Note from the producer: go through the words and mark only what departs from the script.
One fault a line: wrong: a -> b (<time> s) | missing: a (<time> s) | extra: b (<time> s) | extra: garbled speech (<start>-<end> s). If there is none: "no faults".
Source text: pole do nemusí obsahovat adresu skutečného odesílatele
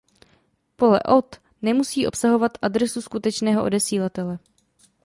wrong: do -> od (1.0 s)